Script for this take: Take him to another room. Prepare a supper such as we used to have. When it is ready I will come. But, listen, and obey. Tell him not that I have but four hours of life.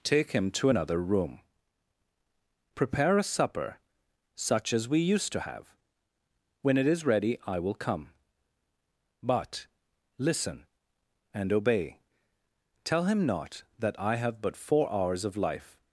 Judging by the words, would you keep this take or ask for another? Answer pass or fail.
pass